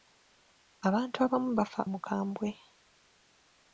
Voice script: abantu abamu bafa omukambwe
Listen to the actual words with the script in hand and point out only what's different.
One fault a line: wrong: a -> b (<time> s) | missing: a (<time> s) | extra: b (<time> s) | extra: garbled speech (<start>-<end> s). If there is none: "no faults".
no faults